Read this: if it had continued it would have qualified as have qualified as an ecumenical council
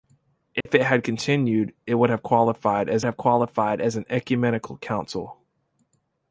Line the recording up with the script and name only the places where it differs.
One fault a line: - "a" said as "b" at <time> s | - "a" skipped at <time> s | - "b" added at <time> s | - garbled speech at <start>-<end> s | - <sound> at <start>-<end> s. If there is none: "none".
- dropout at 0.6-0.7 s